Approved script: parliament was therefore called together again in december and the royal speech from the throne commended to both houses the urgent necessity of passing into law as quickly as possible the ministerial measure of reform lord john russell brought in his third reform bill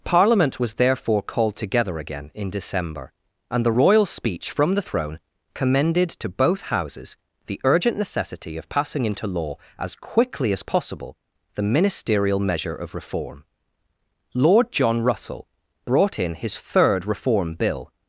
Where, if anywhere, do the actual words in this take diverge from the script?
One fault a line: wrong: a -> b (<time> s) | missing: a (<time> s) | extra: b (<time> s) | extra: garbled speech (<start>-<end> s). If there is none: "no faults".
no faults